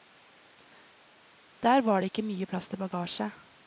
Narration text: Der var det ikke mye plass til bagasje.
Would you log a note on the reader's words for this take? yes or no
no